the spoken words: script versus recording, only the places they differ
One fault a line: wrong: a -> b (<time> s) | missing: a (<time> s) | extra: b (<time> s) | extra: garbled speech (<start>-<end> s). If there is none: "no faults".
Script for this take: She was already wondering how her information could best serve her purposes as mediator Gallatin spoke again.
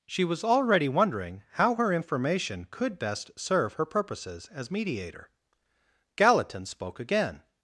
no faults